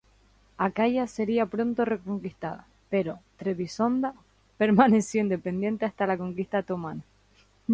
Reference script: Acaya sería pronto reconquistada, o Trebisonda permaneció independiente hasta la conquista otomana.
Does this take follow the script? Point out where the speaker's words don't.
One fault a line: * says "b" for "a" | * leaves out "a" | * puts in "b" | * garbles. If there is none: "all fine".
* says "pero" for "o"